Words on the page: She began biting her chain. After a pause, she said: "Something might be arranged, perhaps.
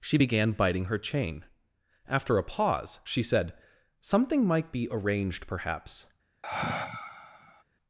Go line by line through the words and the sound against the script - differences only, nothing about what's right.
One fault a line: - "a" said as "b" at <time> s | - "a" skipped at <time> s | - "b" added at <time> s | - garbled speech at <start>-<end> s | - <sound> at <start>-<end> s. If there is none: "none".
- sigh at 6.4-7.6 s